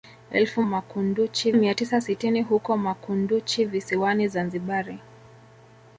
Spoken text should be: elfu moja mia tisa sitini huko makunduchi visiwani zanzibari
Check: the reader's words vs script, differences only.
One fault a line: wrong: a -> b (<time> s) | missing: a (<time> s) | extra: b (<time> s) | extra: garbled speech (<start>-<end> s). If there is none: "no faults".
wrong: moja -> makunduchi (0.6 s)